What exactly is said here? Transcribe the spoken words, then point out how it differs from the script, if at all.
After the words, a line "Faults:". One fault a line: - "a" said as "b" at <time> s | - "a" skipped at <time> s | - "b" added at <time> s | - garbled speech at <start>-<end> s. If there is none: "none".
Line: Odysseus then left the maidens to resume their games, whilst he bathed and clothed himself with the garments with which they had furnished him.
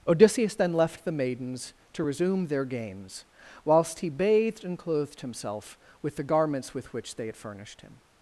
Odysseus then left the maidens to resume their games, whilst he bathed and clothed himself with the garments with which they had furnished him.
Faults:
none